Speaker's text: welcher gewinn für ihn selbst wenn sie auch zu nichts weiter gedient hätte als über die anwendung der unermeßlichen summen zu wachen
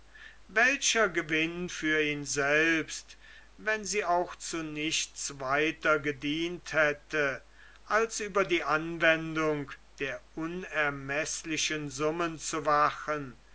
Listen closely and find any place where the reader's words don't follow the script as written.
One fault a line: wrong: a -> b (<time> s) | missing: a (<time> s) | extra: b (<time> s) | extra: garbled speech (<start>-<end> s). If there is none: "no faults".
no faults